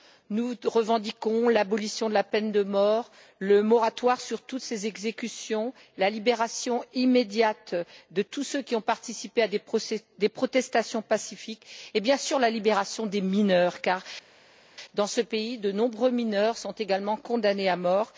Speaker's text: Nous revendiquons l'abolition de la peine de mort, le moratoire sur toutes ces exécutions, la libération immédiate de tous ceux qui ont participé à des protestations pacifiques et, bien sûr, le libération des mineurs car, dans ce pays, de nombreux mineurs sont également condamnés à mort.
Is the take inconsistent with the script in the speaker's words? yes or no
yes